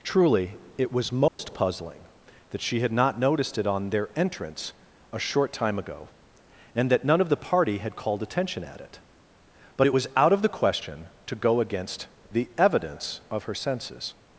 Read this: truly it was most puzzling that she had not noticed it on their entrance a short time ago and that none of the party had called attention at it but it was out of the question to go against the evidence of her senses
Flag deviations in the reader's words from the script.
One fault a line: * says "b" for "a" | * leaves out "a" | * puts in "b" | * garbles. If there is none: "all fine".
all fine